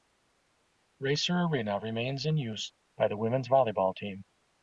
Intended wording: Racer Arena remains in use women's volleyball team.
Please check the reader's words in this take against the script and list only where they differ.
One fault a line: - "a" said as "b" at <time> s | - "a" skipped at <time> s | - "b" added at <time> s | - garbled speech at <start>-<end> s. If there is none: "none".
- "by the" added at 3.0 s